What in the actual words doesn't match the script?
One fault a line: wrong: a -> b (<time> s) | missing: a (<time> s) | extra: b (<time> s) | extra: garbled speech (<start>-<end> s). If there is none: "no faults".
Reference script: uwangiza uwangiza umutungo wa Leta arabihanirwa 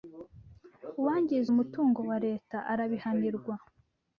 missing: uwangiza (1.5 s)